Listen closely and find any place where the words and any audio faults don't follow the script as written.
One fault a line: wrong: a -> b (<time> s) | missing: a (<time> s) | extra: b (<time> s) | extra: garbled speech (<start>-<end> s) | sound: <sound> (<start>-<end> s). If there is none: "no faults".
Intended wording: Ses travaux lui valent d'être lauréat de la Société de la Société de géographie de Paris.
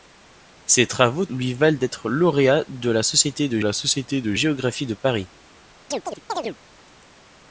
sound: chirp (5.9-6.6 s)